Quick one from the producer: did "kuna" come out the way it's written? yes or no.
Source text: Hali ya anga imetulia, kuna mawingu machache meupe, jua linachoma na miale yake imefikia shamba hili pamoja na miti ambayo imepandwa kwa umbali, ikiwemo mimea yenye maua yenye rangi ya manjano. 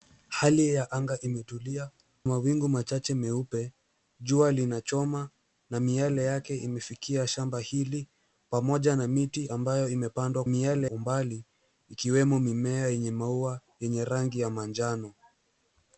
no